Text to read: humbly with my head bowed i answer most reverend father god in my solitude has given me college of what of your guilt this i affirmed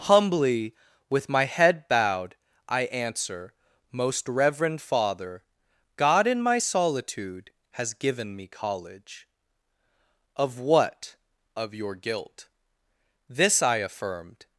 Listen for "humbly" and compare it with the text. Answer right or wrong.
right